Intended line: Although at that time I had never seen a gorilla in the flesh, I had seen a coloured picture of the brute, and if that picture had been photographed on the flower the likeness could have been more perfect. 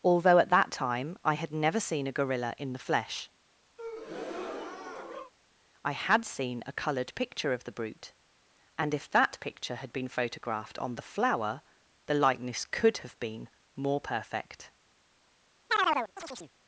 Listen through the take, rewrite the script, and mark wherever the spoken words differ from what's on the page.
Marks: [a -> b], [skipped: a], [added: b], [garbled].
Although at that time I had never seen a gorilla in the flesh, I had seen a coloured picture of the brute, and if that picture had been photographed on the flower the likeness could have been more perfect.